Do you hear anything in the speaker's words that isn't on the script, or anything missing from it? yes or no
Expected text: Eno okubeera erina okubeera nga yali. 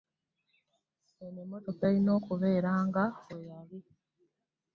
yes